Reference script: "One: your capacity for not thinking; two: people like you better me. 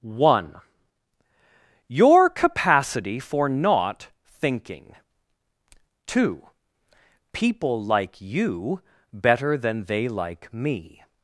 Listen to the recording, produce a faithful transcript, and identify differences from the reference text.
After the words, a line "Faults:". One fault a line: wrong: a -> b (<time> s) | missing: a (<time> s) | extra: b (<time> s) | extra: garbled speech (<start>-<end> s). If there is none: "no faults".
"One: your capacity for not thinking; two: people like you better than they like me.
Faults:
extra: than they like (9.6 s)